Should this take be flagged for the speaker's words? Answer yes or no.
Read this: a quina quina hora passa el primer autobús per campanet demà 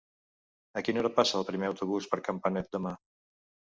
yes